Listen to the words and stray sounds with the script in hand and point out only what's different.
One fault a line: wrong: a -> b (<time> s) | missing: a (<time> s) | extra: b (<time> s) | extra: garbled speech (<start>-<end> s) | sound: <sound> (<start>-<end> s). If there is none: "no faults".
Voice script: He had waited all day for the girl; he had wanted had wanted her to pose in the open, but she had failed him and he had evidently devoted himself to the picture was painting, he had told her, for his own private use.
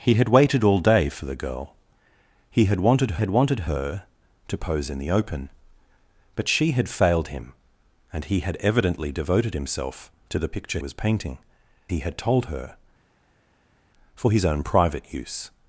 no faults